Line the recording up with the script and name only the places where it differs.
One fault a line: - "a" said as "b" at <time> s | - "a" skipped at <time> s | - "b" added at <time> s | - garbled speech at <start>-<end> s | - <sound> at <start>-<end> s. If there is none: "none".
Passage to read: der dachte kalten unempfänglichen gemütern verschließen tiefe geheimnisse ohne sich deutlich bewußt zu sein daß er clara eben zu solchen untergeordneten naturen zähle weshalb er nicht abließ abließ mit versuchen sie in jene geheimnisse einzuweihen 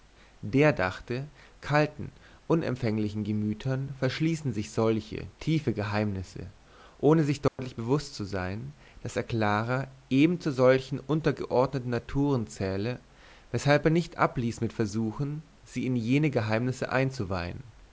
- "sich solche" added at 4.5 s
- dropout at 7.5-7.6 s
- "abließ" skipped at 14.6 s